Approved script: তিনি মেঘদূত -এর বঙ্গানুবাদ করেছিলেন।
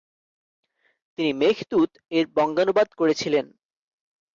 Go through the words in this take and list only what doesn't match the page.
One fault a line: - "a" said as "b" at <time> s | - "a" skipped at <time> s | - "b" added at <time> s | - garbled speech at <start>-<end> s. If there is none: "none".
none